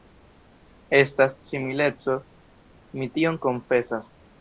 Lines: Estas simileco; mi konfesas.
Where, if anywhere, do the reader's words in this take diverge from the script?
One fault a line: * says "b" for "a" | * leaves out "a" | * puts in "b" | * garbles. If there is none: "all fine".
* puts in "tion"